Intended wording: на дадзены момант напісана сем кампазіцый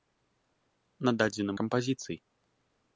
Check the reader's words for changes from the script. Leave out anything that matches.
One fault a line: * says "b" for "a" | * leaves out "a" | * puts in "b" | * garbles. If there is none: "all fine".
* leaves out "момант напісана сем"